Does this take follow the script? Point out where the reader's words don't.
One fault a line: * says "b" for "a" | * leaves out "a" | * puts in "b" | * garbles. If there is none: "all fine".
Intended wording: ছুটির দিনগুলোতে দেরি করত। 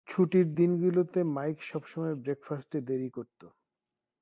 * puts in "মাইক সবসময় ব্রেকফাস্টে"